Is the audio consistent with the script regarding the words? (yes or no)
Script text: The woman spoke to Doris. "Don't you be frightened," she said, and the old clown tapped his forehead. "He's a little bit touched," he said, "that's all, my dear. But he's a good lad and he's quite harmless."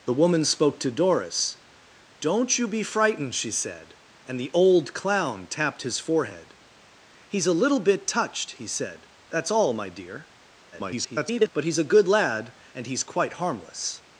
no